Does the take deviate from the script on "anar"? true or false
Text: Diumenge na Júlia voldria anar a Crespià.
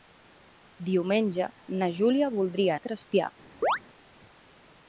true